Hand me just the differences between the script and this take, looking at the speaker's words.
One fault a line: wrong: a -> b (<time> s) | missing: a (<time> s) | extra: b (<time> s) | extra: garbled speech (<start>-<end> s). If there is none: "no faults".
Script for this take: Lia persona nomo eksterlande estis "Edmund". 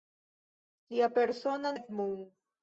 missing: nomo eksterlande estis (1.7 s)